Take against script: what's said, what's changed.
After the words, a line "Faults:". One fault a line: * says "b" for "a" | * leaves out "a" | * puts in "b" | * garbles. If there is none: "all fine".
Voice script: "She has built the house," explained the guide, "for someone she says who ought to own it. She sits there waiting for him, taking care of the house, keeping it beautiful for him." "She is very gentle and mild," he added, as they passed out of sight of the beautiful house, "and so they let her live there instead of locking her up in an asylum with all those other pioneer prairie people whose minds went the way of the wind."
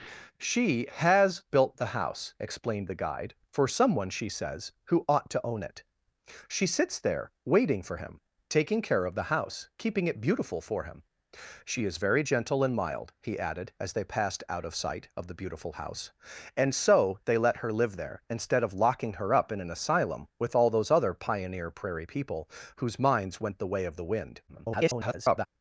"She has built the house," explained the guide, "for someone she says who ought to own it. She sits there waiting for him, taking care of the house, keeping it beautiful for him." "She is very gentle and mild," he added, as they passed out of sight of the beautiful house, "and so they let her live there instead of locking her up in an asylum with all those other pioneer prairie people whose minds went the way of the wind." [garbled]
Faults:
* garbles